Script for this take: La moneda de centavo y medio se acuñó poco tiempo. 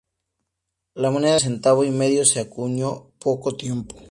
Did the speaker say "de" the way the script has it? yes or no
no